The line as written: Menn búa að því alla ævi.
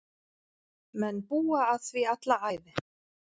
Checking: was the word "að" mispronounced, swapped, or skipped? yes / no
no